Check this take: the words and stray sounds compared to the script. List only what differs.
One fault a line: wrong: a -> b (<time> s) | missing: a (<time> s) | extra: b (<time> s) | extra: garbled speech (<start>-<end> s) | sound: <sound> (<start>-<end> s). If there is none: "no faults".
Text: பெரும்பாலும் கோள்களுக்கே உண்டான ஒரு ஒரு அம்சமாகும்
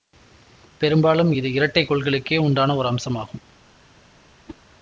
extra: இது இரட்டை (1.3 s)
missing: ஒரு (2.9 s)
sound: whoosh (4.5-4.6 s)